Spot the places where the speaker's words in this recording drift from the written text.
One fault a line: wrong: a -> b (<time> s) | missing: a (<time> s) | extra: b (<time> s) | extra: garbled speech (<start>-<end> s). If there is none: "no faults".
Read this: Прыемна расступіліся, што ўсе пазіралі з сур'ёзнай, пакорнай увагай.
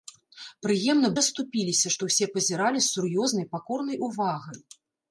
no faults